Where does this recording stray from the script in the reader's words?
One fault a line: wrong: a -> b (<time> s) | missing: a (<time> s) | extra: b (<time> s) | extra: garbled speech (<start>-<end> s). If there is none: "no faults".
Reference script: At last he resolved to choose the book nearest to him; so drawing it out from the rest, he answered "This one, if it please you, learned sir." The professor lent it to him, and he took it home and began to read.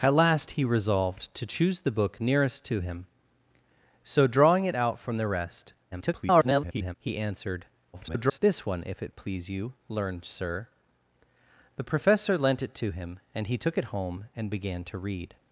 extra: garbled speech (5.9-6.9 s)
extra: garbled speech (7.9-8.4 s)